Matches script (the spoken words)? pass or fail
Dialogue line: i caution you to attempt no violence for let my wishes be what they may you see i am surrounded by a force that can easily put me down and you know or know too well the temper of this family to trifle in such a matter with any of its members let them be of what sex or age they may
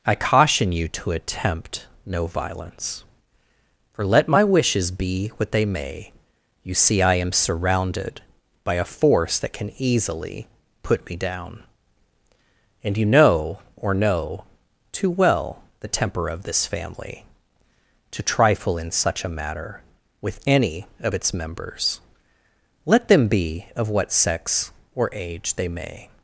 pass